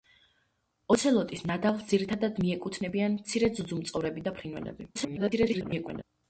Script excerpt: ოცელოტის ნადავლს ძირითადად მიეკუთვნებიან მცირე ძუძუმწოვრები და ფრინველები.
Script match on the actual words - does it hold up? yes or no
no